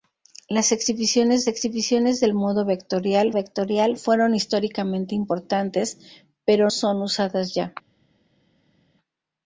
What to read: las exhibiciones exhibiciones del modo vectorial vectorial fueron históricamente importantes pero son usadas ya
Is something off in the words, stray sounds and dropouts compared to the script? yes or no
no